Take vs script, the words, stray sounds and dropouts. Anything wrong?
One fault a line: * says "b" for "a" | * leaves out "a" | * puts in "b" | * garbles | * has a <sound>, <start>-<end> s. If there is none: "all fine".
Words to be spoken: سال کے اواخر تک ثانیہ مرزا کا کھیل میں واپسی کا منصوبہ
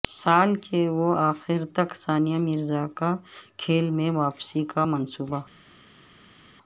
all fine